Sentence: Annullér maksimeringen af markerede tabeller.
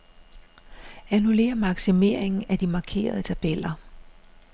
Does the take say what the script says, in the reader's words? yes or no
no